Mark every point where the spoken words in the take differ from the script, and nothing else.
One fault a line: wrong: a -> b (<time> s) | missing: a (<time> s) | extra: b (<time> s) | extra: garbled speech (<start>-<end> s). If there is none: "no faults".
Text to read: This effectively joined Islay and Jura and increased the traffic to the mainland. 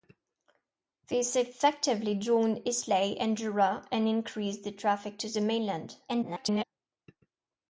extra: garbled speech (6.1-6.6 s)